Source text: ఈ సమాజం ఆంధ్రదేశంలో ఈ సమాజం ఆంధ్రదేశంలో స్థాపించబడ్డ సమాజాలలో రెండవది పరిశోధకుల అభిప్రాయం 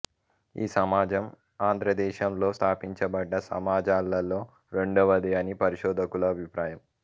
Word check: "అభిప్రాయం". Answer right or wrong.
right